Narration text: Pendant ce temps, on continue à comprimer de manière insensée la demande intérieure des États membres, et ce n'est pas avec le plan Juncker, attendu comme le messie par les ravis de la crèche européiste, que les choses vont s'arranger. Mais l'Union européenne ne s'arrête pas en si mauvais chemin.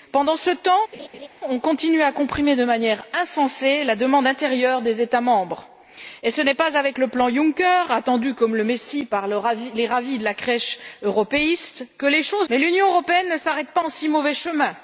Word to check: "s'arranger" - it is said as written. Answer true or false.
false